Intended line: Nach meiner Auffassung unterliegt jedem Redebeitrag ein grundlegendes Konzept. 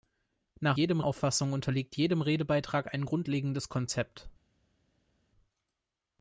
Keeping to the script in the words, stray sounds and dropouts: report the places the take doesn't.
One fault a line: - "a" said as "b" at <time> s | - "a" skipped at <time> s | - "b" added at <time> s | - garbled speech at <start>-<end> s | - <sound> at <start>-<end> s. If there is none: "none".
- "meiner" said as "jedem" at 0.8 s